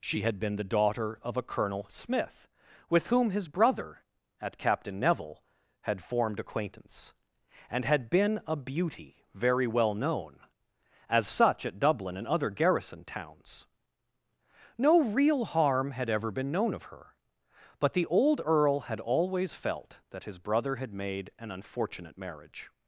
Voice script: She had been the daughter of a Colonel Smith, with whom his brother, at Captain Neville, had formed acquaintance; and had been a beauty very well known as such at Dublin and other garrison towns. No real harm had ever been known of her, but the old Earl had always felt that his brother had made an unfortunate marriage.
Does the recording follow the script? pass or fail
pass